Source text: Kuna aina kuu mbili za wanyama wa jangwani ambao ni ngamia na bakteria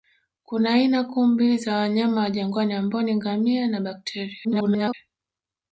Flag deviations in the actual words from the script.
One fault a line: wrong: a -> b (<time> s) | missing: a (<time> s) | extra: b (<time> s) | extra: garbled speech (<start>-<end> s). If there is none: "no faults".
extra: garbled speech (4.4-4.9 s)